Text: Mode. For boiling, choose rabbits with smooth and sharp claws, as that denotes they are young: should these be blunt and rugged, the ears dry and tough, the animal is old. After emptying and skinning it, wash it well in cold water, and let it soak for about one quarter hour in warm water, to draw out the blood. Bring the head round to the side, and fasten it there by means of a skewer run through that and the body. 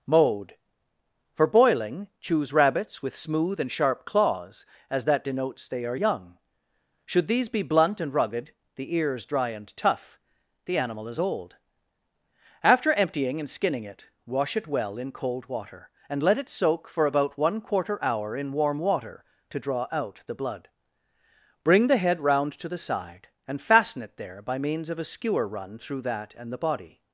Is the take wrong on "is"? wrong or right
right